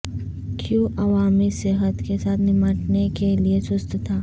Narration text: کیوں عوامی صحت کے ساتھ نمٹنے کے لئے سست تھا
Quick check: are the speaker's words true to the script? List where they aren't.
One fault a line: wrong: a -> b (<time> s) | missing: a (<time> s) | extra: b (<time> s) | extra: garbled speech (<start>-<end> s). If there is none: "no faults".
no faults